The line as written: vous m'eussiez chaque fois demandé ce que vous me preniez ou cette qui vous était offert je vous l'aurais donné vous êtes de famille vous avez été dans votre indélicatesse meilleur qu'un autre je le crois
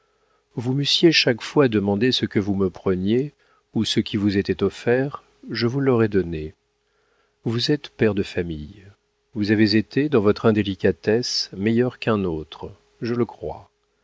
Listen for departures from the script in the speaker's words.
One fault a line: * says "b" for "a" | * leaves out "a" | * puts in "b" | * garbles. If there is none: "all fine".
* says "ce" for "cette"
* puts in "père"